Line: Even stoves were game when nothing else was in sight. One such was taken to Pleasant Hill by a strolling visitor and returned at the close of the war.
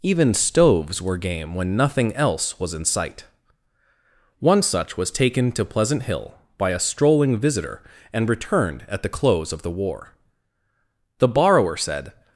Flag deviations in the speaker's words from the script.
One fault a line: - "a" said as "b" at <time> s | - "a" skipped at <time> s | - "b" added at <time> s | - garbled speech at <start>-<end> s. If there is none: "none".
- "The borrower said" added at 11.2 s